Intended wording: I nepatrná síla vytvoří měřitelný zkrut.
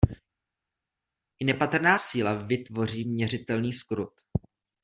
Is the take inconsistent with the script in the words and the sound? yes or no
no